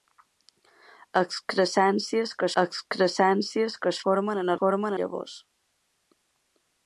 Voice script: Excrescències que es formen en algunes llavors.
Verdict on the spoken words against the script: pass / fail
fail